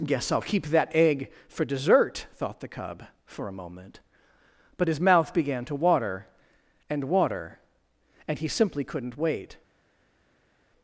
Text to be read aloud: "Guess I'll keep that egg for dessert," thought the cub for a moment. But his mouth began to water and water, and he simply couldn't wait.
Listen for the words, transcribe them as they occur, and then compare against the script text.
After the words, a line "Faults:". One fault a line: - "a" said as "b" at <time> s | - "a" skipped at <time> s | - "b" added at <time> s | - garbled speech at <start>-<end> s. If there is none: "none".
"Guess I'll keep that egg for dessert," thought the cub for a moment. But his mouth began to water and water, and he simply couldn't wait.
Faults:
none